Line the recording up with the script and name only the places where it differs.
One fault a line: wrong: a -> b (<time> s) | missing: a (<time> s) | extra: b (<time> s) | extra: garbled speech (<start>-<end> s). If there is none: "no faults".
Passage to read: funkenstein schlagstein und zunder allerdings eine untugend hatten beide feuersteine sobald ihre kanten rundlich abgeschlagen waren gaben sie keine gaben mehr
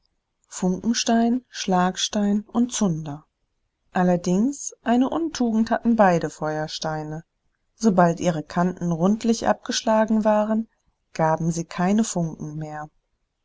wrong: gaben -> funken (12.0 s)